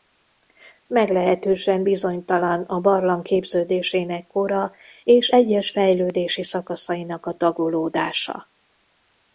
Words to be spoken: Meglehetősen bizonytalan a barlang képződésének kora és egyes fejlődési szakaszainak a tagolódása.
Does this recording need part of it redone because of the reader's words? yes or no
no